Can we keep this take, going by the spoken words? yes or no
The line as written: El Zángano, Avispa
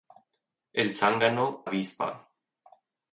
yes